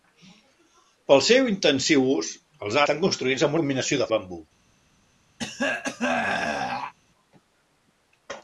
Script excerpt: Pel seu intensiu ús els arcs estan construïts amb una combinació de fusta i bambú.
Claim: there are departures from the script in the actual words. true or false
true